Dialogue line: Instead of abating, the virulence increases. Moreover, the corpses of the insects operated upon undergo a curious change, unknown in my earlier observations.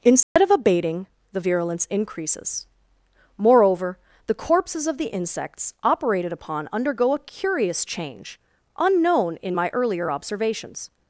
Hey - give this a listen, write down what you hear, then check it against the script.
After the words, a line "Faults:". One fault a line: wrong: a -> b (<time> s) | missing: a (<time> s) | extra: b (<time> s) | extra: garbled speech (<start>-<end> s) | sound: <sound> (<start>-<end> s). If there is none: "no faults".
Instead of abating, the virulence increases. Moreover, the corpses of the insects operated upon undergo a curious change, unknown in my earlier observations.
Faults:
sound: dropout (0.2-0.4 s)